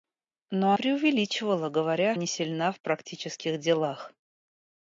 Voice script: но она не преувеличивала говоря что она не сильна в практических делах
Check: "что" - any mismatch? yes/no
yes